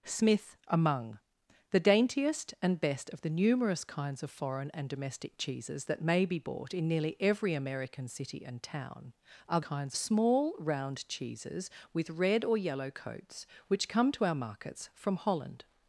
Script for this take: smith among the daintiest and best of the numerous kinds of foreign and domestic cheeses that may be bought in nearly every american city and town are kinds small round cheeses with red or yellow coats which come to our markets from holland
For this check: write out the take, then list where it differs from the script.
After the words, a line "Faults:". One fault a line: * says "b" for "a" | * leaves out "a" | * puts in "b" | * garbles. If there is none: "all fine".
smith among the daintiest and best of the numerous kinds of foreign and domestic cheeses that may be bought in nearly every american city and town are kinds small round cheeses with red or yellow coats which come to our markets from holland
Faults:
all fine